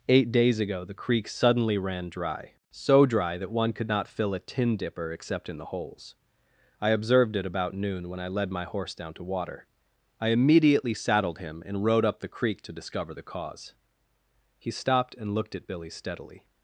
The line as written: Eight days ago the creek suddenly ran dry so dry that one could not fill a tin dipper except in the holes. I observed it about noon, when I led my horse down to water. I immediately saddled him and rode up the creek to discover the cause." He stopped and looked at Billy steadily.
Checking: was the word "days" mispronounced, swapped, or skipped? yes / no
no